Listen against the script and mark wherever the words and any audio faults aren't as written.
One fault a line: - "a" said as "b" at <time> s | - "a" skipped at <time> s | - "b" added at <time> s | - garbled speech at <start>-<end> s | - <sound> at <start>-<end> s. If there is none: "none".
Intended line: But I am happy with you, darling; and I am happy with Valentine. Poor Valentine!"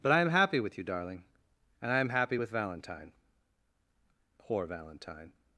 none